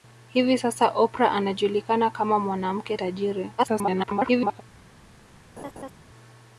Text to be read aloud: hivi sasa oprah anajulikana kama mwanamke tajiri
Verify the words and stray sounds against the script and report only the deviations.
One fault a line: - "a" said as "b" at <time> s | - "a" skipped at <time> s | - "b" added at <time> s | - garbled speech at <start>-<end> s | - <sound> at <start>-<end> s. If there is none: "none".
- garbled speech at 3.6-4.6 s
- laugh at 5.6-5.9 s